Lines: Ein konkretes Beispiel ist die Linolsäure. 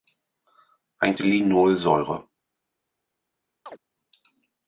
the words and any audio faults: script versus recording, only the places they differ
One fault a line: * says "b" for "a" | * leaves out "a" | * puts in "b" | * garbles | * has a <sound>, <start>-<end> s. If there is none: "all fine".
* leaves out "konkretes Beispiel ist"
* has a chirp, 3.7-3.8 s